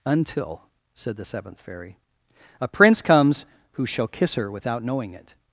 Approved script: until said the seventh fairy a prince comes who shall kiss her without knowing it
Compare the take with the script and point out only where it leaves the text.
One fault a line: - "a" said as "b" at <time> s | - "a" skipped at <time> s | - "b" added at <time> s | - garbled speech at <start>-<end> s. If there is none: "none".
none